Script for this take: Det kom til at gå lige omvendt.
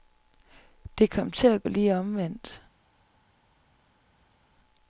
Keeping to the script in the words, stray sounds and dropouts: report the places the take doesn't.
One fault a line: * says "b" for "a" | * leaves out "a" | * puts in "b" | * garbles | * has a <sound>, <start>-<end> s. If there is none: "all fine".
* leaves out "gå"